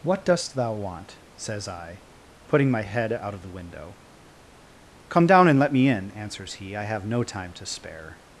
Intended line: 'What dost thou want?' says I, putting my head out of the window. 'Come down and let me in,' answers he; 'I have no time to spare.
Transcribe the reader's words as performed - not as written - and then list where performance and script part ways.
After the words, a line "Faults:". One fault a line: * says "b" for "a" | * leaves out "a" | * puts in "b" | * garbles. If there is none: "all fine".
'What dost thou want?' says I, putting my head out of the window. 'Come down and let me in,' answers he; 'I have no time to spare.
Faults:
all fine